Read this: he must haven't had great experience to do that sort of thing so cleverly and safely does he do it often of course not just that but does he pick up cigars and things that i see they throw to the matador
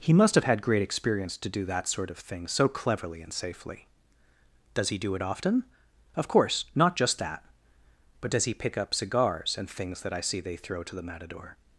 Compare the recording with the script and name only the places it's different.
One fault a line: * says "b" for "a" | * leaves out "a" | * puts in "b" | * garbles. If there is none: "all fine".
* says "have" for "haven't"